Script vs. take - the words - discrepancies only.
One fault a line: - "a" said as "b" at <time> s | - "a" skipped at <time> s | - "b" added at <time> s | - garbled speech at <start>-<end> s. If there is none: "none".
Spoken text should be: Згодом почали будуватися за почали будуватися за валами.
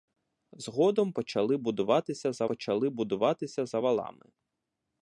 none